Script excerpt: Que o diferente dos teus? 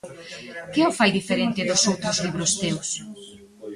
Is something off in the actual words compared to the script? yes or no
yes